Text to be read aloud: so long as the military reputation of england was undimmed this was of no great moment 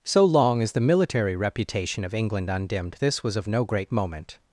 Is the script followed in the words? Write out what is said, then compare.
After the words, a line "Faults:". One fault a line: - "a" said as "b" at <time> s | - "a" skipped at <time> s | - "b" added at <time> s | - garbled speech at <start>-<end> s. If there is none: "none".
so long as the military reputation of england undimmed this was of no great moment
Faults:
- "was" skipped at 2.5 s